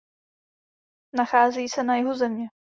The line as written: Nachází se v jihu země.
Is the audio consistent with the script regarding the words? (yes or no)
no